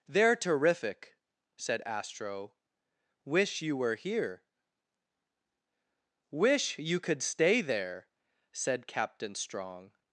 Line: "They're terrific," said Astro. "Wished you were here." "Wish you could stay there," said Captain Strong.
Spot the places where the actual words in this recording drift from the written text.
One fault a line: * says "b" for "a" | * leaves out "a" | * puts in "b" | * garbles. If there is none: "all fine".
* says "Wish" for "Wished"